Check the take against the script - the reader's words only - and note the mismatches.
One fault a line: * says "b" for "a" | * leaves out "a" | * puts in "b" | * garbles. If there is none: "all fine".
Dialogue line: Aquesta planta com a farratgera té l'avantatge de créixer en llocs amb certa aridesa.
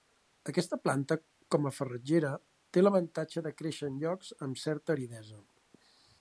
all fine